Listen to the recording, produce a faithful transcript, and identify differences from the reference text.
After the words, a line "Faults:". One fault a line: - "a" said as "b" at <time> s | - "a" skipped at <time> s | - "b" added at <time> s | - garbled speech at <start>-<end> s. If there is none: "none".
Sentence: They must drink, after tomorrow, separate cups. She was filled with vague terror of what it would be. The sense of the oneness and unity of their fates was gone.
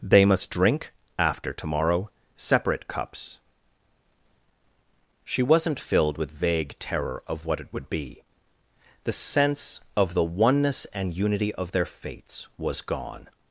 They must drink, after tomorrow, separate cups. She wasn't filled with vague terror of what it would be. The sense of the oneness and unity of their fates was gone.
Faults:
- "was" said as "wasn't" at 5.4 s